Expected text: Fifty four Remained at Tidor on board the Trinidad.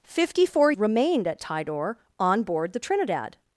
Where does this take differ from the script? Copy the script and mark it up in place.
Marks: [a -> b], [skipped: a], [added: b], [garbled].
Fifty four Remained at Tidor on board the Trinidad.